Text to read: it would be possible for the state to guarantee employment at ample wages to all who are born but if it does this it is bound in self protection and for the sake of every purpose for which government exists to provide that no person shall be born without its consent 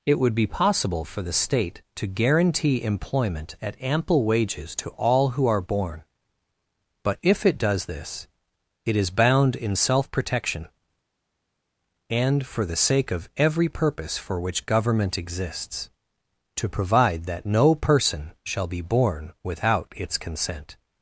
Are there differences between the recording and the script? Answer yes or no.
no